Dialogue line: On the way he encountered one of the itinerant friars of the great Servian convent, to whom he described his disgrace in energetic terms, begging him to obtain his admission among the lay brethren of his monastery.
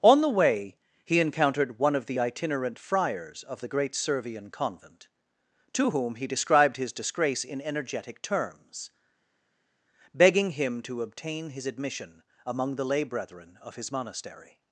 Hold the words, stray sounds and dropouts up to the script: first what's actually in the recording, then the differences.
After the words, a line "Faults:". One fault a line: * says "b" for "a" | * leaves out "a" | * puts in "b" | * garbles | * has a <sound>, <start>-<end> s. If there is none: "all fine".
On the way he encountered one of the itinerant friars of the great Servian convent, to whom he described his disgrace in energetic terms, begging him to obtain his admission among the lay brethren of his monastery.
Faults:
all fine